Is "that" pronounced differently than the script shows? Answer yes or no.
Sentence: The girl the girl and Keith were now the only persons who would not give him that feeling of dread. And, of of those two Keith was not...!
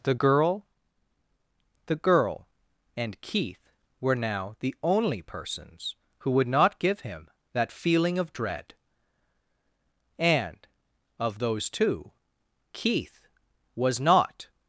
no